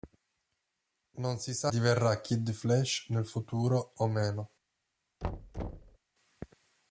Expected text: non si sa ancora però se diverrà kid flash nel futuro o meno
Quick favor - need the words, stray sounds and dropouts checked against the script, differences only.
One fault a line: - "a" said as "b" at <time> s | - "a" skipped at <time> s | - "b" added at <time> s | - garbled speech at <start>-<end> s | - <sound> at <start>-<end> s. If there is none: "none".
- "ancora però se" skipped at 1.7 s
- thud at 5.2-6.0 s